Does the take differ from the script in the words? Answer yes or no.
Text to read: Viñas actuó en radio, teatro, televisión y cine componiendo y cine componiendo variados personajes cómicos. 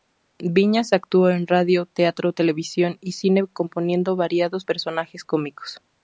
yes